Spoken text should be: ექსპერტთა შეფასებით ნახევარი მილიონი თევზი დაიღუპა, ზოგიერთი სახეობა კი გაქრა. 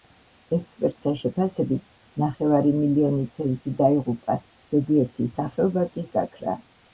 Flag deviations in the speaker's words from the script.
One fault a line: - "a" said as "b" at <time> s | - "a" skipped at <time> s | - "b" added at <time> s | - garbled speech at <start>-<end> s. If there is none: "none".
none